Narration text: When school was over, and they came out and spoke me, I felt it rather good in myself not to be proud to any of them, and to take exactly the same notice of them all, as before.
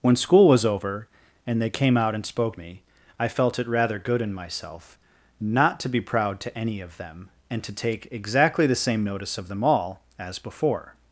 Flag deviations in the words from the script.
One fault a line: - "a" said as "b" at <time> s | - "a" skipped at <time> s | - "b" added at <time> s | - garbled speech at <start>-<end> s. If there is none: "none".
none